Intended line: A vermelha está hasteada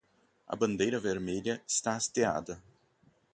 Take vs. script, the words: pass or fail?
fail